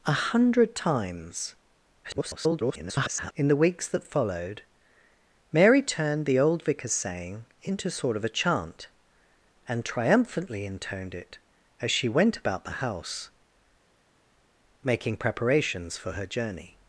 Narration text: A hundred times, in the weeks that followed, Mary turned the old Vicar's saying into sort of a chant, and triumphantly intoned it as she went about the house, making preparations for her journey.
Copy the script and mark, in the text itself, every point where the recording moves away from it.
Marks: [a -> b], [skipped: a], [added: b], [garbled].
A hundred times, [garbled] in the weeks that followed, Mary turned the old Vicar's saying into sort of a chant, and triumphantly intoned it as she went about the house, making preparations for her journey.